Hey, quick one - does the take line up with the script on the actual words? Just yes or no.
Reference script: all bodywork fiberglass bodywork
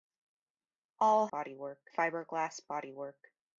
yes